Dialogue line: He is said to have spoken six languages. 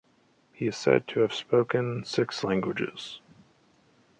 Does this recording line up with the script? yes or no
yes